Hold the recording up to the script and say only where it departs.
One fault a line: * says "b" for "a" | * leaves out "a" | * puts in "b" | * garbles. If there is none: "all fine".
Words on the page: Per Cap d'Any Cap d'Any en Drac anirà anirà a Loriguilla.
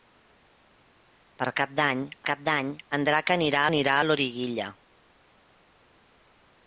all fine